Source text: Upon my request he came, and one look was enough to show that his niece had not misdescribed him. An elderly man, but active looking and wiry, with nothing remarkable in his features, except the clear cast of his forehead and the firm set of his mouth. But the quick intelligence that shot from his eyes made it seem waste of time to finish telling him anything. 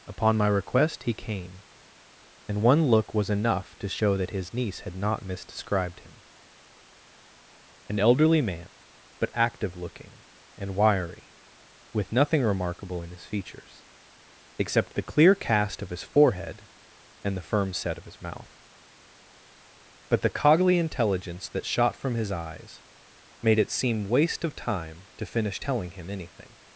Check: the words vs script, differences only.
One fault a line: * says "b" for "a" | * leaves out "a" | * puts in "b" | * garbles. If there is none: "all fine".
* says "coggly" for "quick"